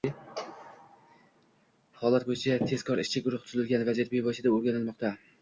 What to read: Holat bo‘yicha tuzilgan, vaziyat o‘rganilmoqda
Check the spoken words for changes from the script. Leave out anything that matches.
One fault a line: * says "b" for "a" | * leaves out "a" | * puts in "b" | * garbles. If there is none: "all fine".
* puts in "tezkor ishchi guruh"
* puts in "bevosita"